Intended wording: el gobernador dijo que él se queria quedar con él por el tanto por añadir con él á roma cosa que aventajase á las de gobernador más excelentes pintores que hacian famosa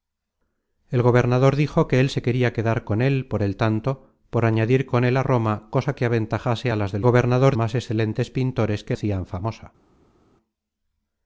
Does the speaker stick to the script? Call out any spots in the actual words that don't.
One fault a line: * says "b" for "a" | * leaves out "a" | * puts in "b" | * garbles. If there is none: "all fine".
all fine